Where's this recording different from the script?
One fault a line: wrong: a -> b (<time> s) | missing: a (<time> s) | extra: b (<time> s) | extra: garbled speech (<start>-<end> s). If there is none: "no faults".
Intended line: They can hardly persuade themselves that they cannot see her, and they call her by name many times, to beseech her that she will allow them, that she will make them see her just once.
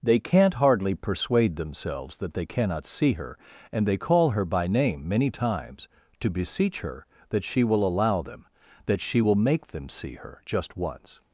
wrong: can -> can't (0.2 s)